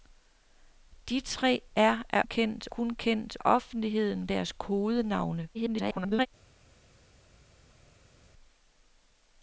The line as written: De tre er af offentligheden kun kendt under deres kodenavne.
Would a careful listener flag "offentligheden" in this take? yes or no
yes